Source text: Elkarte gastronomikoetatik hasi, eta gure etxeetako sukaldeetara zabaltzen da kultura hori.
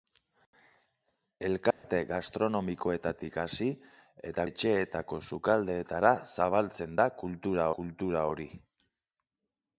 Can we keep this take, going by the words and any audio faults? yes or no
no